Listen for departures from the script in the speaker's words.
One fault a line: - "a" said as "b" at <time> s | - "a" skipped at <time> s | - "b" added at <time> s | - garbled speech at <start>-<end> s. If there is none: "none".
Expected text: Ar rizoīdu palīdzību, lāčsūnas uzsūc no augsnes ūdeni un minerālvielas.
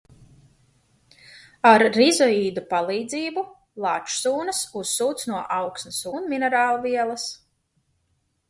- "ūdeni" skipped at 6.0 s